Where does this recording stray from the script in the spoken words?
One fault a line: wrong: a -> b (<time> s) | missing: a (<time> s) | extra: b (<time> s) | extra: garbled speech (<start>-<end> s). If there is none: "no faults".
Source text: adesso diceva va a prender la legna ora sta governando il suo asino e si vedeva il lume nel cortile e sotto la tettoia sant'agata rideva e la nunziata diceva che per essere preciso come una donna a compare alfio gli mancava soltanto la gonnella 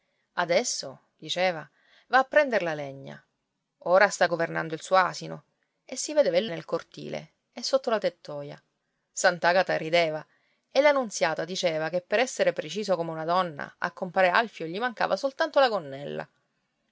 missing: lume (6.5 s)